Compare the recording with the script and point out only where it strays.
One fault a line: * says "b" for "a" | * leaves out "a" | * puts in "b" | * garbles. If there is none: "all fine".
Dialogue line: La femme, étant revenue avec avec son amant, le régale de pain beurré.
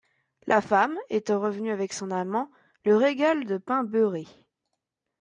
* leaves out "avec"